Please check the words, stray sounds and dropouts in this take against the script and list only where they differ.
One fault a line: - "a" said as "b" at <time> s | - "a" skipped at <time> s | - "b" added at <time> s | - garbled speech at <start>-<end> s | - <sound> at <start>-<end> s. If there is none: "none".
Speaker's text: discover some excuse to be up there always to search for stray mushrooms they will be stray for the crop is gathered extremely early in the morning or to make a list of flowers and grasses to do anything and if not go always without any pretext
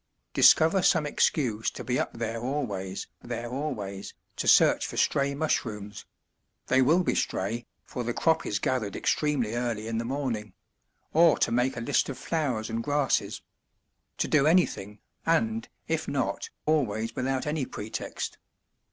- "there always" added at 3.2 s
- "go" skipped at 16.5 s